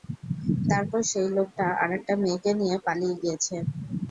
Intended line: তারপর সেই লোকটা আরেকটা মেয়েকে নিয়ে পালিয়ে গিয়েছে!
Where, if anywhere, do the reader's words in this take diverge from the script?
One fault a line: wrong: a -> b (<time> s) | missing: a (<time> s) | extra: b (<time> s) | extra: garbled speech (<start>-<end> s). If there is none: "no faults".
no faults